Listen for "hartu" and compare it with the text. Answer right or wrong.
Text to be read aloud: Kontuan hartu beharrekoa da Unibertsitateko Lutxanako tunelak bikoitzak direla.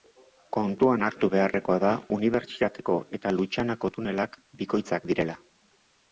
right